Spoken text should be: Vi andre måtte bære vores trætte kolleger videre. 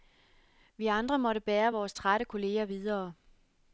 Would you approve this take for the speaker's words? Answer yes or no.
yes